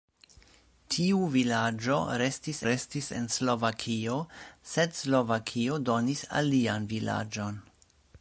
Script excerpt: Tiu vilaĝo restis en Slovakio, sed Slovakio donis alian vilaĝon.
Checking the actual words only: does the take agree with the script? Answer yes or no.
no